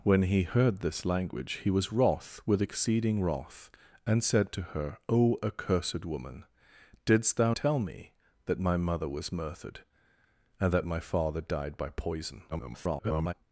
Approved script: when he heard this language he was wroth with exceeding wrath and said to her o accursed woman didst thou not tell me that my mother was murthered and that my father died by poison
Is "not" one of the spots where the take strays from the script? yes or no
yes